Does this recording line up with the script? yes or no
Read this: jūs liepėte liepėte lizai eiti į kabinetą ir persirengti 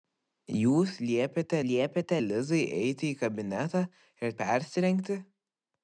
yes